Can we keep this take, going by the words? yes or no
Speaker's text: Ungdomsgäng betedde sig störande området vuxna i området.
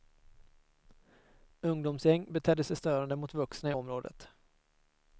no